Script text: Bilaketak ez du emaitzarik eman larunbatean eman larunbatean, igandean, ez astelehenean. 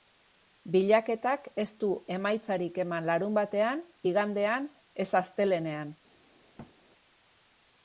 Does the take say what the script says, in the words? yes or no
no